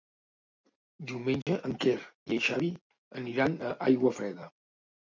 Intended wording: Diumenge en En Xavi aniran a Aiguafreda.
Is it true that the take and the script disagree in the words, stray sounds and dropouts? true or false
true